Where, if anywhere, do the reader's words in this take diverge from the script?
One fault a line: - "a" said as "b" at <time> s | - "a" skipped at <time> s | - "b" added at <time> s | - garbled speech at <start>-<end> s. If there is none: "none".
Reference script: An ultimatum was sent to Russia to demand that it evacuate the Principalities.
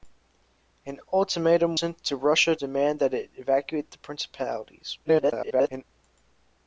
- "was" skipped at 1.8 s
- "to" skipped at 2.6 s
- garbled speech at 5.1-5.8 s